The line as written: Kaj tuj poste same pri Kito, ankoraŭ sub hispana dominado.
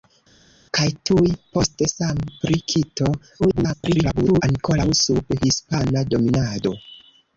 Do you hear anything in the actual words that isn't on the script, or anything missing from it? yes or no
yes